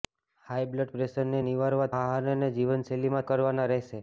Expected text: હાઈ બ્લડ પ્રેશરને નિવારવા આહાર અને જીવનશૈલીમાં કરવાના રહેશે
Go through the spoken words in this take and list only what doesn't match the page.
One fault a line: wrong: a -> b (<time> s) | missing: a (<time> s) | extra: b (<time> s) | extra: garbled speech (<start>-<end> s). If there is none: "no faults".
no faults